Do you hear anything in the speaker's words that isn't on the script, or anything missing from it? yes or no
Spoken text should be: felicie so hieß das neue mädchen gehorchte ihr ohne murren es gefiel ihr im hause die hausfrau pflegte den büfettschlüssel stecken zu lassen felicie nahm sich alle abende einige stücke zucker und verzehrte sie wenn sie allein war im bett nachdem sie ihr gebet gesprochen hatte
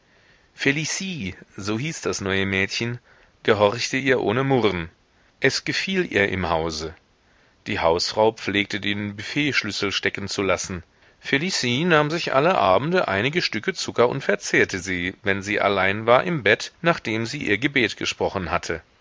no